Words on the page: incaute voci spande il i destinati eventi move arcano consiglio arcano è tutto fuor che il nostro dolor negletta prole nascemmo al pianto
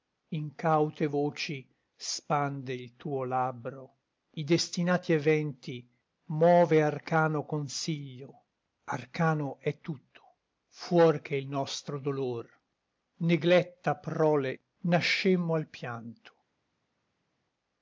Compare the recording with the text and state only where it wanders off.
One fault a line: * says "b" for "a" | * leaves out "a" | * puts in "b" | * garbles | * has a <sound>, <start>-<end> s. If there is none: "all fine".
* puts in "tuo labbro"